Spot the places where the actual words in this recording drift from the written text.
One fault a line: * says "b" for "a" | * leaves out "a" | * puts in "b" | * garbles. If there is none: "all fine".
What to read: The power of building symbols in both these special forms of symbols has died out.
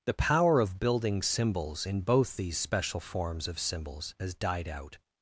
all fine